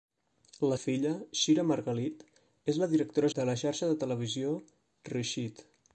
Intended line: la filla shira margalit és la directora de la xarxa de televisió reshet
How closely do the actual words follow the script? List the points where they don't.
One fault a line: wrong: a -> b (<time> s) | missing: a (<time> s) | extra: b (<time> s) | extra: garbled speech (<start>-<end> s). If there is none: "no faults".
no faults